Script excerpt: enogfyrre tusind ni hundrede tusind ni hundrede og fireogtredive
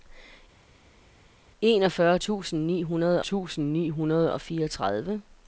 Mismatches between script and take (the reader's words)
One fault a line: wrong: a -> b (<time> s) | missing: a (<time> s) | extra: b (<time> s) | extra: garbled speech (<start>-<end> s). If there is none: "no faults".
no faults